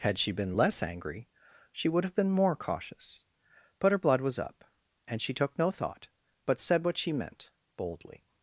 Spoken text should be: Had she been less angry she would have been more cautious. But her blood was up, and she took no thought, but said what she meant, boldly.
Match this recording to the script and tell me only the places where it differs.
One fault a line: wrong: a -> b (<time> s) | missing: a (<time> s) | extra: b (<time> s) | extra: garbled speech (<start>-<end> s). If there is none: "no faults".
no faults